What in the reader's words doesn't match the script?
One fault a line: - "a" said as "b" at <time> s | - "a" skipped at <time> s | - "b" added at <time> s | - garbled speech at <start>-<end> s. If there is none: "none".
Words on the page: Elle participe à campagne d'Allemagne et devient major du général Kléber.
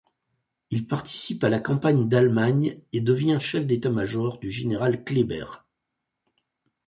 - "Elle" said as "Il" at 0.7 s
- "la" added at 1.5 s
- "chef d'état" added at 3.4 s